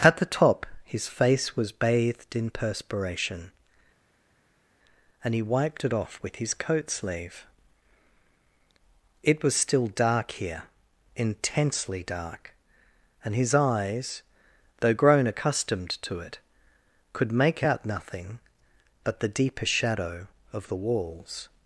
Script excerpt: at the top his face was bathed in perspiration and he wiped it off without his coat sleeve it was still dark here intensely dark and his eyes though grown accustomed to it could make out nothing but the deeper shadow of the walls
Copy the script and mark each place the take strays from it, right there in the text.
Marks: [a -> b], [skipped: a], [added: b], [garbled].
at the top his face was bathed in perspiration and he wiped it off [without -> with] his coat sleeve it was still dark here intensely dark and his eyes though grown accustomed to it could make out nothing but the deeper shadow of the walls